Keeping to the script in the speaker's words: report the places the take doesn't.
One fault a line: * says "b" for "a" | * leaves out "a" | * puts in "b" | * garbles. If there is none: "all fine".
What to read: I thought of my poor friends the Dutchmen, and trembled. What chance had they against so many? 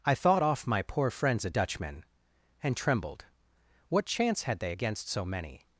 * says "off" for "of"
* says "a" for "the"